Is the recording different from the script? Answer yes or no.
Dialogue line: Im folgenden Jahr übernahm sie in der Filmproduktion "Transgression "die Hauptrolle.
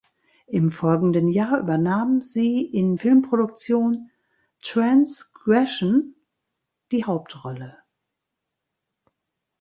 yes